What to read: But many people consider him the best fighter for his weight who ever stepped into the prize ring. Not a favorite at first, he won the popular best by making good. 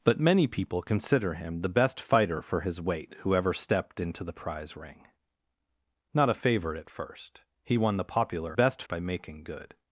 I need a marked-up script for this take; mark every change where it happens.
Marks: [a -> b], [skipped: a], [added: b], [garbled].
But many people consider him the best fighter for his weight who ever stepped into the prize ring. Not a favorite at first, he won the popular best by making good.